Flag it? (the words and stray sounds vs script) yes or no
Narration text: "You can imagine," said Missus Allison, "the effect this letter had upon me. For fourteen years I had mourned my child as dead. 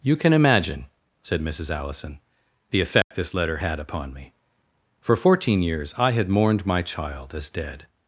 yes